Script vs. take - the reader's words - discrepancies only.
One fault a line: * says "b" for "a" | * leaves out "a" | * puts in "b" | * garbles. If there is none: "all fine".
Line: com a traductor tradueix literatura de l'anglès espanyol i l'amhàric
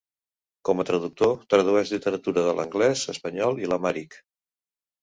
all fine